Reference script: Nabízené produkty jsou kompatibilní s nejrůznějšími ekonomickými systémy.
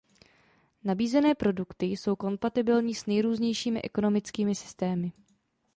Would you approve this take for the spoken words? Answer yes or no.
yes